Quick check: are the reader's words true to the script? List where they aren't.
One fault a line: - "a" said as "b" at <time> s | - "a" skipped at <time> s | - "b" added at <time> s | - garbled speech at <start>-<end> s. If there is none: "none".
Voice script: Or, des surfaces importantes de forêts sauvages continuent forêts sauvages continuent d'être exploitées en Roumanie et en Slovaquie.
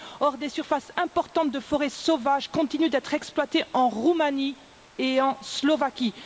- "forêts sauvages continuent" skipped at 2.9 s